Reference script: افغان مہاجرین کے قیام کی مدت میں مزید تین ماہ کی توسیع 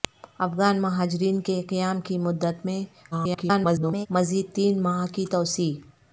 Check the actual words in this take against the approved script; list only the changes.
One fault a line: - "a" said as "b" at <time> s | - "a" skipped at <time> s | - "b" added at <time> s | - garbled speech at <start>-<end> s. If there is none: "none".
- garbled speech at 3.1-4.1 s